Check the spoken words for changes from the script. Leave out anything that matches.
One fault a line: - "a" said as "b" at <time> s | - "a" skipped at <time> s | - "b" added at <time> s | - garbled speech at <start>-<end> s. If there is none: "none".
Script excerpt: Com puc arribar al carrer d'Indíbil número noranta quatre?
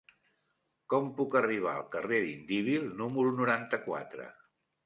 none